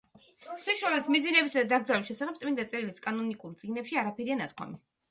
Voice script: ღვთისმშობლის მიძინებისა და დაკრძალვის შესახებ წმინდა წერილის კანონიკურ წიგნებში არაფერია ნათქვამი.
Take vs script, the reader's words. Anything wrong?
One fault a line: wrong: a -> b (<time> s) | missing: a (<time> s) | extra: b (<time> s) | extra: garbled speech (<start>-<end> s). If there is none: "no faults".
no faults